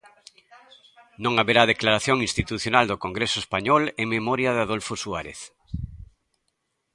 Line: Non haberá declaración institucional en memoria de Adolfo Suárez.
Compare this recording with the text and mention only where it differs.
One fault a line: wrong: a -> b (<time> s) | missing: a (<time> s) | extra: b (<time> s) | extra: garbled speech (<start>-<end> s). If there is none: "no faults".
extra: do Congreso español (2.9 s)